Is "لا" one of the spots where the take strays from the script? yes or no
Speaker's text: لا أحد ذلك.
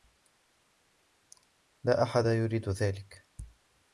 no